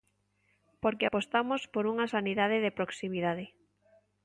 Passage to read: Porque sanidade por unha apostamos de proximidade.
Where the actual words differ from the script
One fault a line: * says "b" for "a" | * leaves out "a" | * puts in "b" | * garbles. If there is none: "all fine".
* says "apostamos" for "sanidade"
* says "sanidade" for "apostamos"